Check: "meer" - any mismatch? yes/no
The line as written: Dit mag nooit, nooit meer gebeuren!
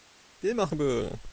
yes